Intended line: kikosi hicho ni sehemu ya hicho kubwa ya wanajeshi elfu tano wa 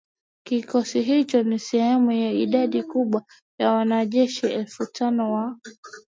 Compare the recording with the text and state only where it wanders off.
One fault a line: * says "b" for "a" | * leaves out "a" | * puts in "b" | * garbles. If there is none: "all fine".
* says "idadi" for "hicho"